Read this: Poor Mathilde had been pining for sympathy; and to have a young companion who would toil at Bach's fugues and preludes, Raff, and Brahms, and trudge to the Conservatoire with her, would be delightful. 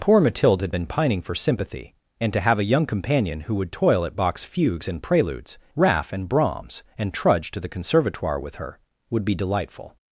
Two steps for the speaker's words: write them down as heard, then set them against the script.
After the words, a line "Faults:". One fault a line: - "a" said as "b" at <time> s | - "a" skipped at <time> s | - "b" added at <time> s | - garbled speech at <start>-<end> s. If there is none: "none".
Poor Mathilde had been pining for sympathy; and to have a young companion who would toil at Bach's fugues and preludes, Raff, and Brahms, and trudge to the Conservatoire with her, would be delightful.
Faults:
none